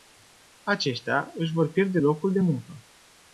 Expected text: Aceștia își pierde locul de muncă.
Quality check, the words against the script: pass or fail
fail